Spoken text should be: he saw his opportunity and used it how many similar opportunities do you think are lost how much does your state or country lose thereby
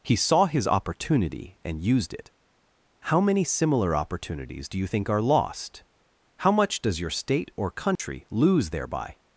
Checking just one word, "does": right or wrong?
right